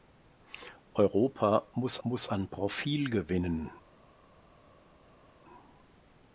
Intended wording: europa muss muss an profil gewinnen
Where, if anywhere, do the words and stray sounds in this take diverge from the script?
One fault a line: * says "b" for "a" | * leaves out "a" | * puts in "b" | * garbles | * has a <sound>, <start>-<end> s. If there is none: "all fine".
all fine